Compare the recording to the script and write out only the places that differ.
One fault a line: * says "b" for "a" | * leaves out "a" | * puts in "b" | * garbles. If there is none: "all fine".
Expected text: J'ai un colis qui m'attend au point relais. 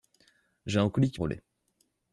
* leaves out "m'attend au point"